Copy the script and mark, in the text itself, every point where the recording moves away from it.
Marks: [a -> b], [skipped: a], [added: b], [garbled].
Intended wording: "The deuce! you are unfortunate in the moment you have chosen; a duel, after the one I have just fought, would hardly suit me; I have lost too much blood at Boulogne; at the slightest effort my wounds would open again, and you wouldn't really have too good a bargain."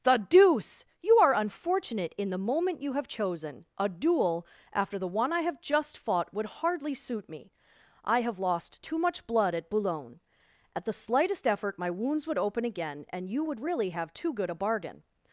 "The deuce! you are unfortunate in the moment you have chosen; a duel, after the one I have just fought, would hardly suit me; I have lost too much blood at Boulogne; at the slightest effort my wounds would open again, and you [wouldn't -> would] really have too good a bargain."